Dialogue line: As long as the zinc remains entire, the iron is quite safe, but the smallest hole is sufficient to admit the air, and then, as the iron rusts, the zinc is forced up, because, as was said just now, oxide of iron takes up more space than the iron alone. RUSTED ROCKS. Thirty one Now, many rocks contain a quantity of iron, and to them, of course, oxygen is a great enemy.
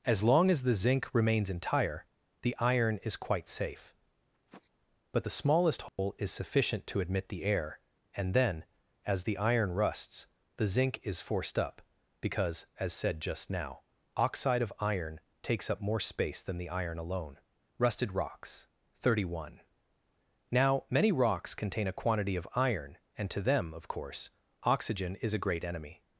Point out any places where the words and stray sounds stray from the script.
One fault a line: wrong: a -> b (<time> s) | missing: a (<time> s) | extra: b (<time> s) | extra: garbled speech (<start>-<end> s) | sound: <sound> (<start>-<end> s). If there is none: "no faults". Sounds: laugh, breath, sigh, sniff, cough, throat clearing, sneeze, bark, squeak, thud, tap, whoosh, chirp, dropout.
sound: sniff (4.3-4.7 s)
sound: dropout (5.9-6.0 s)
missing: was (12.9 s)